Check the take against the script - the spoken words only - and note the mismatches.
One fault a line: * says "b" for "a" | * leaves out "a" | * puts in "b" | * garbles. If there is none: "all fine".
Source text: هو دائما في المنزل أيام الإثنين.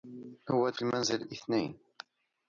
* leaves out "دائما"
* leaves out "أيام"